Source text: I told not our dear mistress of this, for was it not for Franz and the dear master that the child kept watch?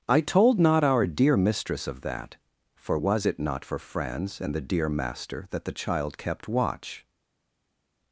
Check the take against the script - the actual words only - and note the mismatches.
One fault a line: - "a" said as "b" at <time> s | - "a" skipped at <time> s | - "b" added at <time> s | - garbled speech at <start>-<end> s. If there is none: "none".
- "this" said as "that" at 2.0 s